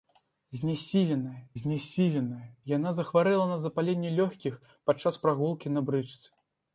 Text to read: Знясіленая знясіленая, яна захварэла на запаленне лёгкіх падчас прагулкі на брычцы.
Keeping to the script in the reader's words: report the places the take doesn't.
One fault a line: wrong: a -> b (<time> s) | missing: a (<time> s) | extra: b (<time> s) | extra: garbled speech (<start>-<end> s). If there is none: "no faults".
no faults